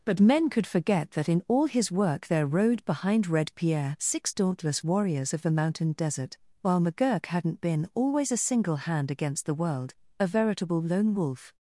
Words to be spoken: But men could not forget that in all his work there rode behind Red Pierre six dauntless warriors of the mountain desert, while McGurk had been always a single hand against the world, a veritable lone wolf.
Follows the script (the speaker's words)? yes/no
no